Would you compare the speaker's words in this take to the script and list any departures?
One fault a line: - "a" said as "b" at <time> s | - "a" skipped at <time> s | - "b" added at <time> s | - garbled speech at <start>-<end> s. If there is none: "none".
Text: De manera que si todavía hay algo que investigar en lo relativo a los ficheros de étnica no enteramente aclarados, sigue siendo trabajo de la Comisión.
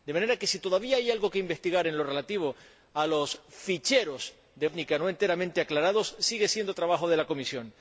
none